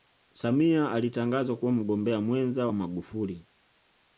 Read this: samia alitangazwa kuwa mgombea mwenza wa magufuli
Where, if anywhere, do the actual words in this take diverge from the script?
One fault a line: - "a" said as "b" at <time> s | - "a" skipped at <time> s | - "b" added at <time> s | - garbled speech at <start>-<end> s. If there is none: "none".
none